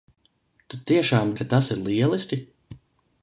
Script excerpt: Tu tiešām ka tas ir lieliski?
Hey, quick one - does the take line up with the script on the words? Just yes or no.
yes